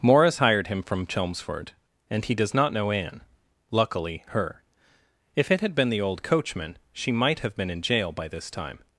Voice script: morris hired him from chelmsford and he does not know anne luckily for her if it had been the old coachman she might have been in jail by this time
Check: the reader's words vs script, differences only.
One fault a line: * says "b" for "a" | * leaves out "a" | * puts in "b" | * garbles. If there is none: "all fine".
* leaves out "for"